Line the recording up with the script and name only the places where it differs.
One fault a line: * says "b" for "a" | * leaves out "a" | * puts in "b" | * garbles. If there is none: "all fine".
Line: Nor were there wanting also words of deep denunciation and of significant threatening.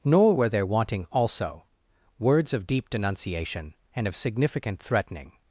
all fine